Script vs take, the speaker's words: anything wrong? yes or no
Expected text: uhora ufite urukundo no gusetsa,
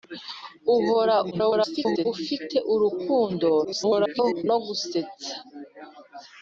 yes